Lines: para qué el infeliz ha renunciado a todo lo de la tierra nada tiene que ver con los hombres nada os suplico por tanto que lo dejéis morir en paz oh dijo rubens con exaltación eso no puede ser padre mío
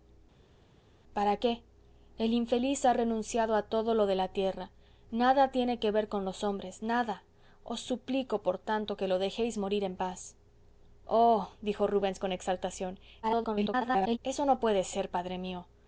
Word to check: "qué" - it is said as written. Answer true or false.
true